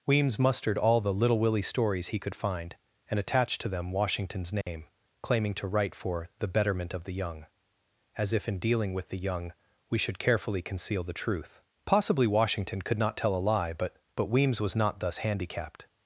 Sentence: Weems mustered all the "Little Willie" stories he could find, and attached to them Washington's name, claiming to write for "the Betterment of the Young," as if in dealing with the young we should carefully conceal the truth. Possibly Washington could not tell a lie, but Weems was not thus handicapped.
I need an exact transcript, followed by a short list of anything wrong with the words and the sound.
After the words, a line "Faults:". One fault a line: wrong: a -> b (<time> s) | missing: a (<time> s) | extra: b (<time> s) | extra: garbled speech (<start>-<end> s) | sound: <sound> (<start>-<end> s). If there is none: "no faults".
Weems mustered all the "Little Willie" stories he could find, and attached to them Washington's name, claiming to write for "the Betterment of the Young," as if in dealing with the young we should carefully conceal the truth. Possibly Washington could not tell a lie, but but Weems was not thus handicapped.
Faults:
sound: dropout (4.6-4.7 s)
extra: but (14.2 s)